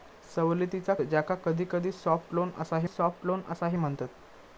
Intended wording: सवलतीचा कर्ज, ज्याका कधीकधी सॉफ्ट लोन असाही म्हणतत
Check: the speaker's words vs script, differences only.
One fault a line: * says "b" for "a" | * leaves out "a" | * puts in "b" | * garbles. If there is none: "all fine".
* leaves out "कर्ज"
* puts in "सॉफ्ट लोन असाही"